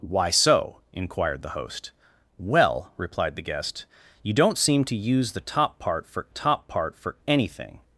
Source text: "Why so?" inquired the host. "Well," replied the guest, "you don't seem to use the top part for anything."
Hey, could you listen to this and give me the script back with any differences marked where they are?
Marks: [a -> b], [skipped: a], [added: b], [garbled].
"Why so?" inquired the host. "Well," replied the guest, "you don't seem to use the top part for [added: top part for] anything."